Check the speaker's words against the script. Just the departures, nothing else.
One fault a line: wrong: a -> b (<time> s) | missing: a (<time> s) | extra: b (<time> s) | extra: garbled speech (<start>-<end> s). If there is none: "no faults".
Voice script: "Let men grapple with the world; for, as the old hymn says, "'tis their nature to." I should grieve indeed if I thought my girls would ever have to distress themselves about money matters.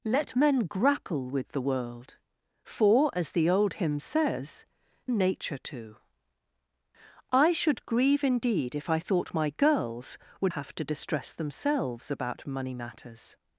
missing: tis their (4.7 s)
missing: ever (10.5 s)